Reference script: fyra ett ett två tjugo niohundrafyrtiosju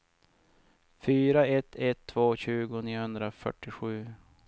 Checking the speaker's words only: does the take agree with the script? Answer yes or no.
yes